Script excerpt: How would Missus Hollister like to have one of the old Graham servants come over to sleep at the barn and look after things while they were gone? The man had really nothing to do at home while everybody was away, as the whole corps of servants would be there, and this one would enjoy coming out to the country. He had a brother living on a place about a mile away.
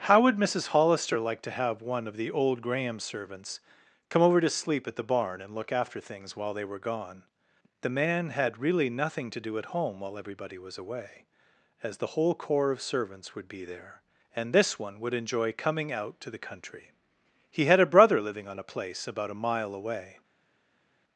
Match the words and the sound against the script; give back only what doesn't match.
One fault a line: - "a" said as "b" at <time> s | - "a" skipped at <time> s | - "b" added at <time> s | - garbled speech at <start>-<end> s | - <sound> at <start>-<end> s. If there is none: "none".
none